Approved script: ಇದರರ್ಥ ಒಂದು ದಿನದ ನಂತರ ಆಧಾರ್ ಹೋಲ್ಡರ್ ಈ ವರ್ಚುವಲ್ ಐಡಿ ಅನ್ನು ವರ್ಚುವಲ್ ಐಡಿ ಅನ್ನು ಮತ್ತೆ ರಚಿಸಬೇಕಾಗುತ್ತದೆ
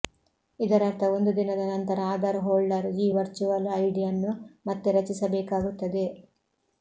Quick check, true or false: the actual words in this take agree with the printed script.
false